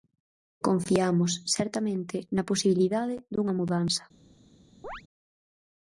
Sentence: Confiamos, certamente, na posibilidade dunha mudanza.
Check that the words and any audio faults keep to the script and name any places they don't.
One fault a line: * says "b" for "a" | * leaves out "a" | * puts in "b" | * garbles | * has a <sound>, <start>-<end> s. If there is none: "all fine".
* has a chirp, 4.8-5.0 s